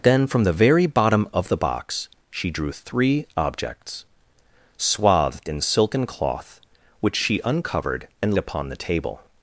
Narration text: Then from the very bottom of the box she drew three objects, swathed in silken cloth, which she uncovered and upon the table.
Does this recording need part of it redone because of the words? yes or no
no